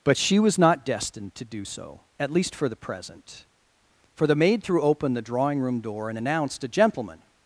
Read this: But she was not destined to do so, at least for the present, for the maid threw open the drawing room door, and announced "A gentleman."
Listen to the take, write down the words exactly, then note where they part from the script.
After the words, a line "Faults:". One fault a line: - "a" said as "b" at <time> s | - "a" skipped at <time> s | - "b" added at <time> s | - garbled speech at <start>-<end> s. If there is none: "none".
But she was not destined to do so, at least for the present, for the maid threw open the drawing room door, and announced "A gentleman."
Faults:
none